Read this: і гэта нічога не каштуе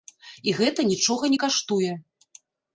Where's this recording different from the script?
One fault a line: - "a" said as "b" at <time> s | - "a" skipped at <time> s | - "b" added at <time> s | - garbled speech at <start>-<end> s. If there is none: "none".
none